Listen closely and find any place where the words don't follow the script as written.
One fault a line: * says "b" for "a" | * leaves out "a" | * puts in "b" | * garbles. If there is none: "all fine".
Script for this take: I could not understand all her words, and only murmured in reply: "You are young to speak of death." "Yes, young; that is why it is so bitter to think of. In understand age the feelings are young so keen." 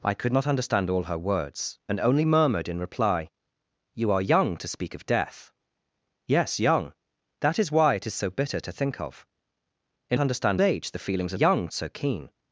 all fine